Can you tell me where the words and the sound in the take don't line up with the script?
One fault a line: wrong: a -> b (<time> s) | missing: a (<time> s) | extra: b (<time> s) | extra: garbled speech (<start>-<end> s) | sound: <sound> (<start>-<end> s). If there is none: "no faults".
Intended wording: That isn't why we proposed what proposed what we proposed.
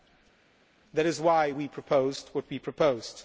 wrong: isn't -> is (1.1 s)
missing: proposed what (2.4 s)